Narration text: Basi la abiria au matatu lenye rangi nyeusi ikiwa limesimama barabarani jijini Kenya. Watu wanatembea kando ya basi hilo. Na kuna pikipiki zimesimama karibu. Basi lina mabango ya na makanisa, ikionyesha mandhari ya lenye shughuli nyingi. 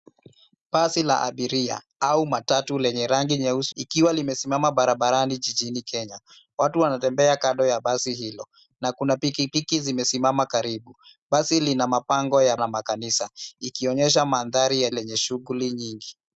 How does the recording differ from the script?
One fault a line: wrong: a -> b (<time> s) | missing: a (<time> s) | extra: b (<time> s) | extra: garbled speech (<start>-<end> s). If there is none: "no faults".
no faults